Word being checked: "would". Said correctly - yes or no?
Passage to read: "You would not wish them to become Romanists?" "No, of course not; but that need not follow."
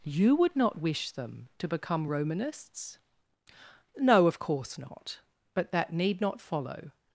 yes